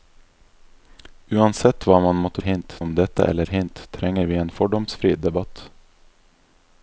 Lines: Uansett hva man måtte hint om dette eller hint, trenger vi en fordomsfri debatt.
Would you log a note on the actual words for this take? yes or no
no